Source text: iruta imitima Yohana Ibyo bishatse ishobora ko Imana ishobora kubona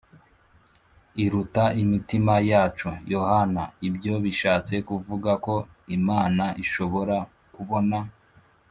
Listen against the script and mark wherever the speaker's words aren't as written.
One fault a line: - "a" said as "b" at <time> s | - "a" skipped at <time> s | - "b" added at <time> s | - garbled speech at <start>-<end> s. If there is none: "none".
- "yacu" added at 2.5 s
- "ishobora" said as "kuvuga" at 4.9 s